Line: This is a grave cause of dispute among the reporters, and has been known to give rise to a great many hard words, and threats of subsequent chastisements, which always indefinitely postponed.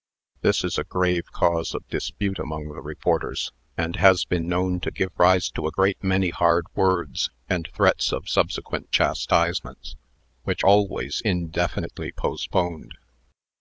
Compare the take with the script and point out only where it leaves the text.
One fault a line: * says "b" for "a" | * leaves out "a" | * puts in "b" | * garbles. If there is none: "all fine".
all fine